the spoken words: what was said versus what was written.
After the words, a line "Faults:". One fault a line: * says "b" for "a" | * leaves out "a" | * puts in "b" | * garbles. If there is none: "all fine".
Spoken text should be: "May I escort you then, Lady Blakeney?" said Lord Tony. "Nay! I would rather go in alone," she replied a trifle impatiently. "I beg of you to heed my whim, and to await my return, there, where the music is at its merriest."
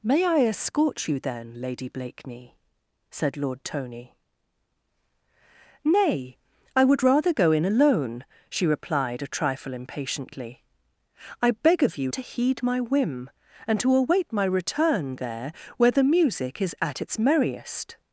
"May I escort you then, Lady Blakeney?" said Lord Tony. "Nay! I would rather go in alone," she replied a trifle impatiently. "I beg of you to heed my whim, and to await my return, there, where the music is at its merriest."
Faults:
all fine